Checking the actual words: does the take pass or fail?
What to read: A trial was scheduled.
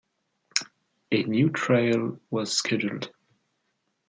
fail